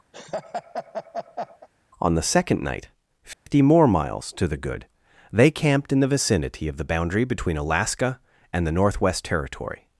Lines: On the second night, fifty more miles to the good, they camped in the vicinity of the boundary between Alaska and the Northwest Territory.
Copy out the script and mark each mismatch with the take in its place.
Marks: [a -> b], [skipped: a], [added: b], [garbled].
On the second night, fifty more miles to the good, they camped in the vicinity of the boundary between Alaska and the Northwest Territory.